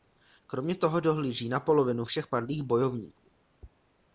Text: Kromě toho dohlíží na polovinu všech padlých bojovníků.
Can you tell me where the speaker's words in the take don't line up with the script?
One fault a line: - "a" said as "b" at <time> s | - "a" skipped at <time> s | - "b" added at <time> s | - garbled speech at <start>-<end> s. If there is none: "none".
none